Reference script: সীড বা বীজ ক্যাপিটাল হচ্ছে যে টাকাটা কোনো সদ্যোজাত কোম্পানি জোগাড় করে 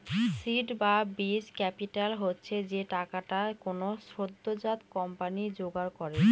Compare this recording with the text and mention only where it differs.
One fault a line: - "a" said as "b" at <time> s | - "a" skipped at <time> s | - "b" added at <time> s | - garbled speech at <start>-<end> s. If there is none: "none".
none